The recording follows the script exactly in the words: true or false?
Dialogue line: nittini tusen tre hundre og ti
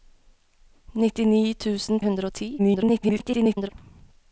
false